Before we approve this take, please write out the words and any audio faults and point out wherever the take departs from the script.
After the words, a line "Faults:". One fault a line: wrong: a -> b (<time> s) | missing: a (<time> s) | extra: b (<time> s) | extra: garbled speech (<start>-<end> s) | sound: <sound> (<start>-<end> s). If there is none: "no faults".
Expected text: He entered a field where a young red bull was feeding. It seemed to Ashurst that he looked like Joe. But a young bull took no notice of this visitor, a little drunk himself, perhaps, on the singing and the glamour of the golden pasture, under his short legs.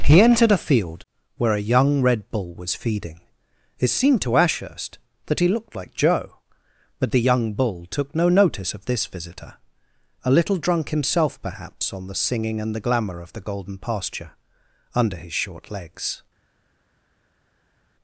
He entered a field where a young red bull was feeding. It seemed to Ashurst that he looked like Joe. But the young bull took no notice of this visitor, a little drunk himself, perhaps, on the singing and the glamour of the golden pasture, under his short legs.
Faults:
wrong: a -> the (7.1 s)